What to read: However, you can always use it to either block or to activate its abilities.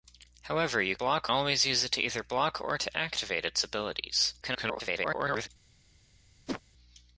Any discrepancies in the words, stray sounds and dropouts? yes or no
yes